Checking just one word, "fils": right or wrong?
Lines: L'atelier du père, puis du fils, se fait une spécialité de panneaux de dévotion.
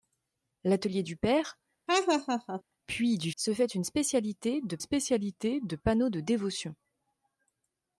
wrong